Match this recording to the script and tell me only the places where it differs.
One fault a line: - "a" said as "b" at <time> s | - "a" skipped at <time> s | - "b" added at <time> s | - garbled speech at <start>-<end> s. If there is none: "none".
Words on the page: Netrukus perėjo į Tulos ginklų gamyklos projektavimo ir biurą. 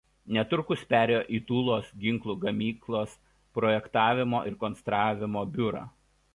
- "konstravimo" added at 4.6 s